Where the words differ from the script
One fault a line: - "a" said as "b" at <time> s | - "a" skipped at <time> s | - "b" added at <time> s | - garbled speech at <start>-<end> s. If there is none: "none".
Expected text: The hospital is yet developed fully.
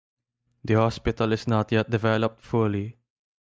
- "not" added at 1.4 s